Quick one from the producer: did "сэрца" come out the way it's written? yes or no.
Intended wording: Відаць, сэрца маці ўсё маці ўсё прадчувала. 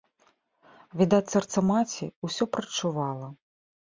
yes